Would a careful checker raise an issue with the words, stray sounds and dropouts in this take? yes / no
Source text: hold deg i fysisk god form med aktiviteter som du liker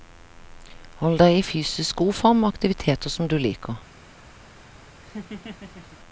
yes